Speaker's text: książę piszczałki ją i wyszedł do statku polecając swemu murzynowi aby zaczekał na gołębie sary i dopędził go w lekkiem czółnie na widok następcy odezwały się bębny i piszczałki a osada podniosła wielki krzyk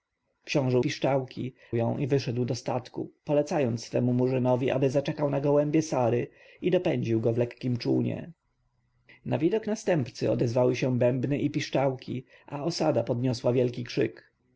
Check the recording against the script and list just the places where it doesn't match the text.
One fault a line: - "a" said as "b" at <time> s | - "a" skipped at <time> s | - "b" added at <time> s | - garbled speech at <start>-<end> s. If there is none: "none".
none